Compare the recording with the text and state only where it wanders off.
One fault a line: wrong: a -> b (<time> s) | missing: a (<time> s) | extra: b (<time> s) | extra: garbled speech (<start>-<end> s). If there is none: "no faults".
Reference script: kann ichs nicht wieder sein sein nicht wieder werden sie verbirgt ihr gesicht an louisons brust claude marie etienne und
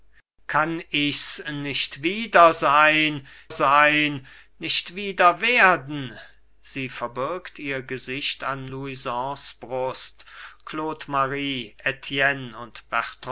no faults